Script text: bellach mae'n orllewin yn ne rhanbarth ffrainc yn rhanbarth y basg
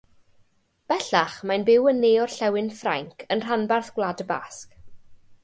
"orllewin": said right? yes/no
no